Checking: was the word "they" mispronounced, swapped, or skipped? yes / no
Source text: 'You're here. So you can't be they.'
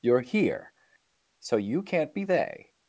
no